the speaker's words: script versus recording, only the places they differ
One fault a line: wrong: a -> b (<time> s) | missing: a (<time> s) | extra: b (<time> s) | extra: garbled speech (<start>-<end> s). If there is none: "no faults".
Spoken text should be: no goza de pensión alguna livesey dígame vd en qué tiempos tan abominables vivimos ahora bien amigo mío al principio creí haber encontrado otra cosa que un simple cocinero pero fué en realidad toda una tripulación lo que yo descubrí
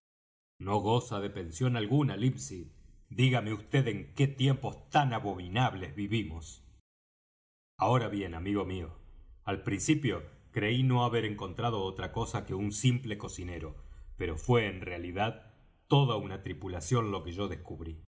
extra: no (10.8 s)